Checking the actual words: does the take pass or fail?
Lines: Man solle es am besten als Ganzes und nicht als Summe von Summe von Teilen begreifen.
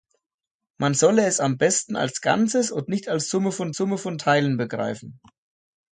pass